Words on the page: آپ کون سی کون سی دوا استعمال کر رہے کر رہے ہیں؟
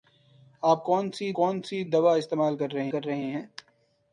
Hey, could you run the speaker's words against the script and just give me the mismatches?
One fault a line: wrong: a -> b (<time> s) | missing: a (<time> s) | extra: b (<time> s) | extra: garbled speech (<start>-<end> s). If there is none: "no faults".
no faults